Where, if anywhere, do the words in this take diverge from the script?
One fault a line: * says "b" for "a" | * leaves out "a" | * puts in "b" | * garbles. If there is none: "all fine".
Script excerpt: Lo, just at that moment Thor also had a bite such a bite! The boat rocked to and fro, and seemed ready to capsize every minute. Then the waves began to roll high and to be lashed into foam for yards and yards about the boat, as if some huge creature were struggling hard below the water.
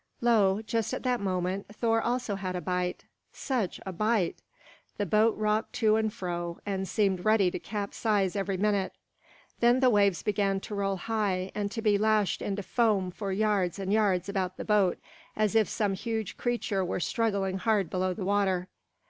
all fine